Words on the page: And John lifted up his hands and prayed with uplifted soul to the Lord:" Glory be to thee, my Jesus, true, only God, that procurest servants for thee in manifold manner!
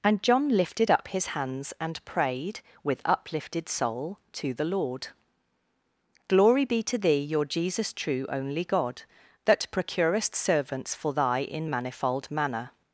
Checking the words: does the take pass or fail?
fail